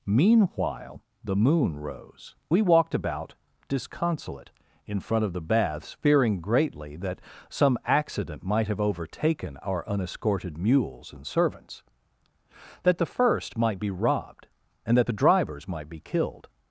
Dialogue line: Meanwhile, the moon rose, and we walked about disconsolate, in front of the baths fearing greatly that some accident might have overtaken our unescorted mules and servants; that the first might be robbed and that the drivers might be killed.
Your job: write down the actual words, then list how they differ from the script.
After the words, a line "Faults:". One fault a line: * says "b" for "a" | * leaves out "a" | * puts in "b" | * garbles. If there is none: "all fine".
Meanwhile, the moon rose, we walked about disconsolate, in front of the baths fearing greatly that some accident might have overtaken our unescorted mules and servants; that the first might be robbed and that the drivers might be killed.
Faults:
* leaves out "and"